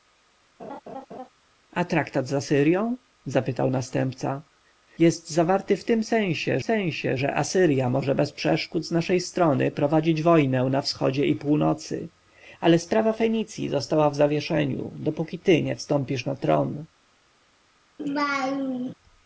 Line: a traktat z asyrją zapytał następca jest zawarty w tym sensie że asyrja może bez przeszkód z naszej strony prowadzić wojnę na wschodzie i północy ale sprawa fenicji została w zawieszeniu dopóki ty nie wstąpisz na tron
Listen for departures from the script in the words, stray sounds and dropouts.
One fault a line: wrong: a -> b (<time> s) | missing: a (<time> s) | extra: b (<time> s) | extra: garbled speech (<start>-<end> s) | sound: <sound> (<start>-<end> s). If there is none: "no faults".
sound: laugh (0.6-1.3 s)
extra: sensie (6.6 s)
sound: laugh (18.0-18.9 s)